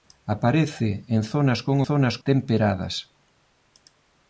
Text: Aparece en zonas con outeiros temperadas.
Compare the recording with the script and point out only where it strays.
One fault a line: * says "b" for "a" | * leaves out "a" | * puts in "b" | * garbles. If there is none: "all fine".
* says "zonas" for "outeiros"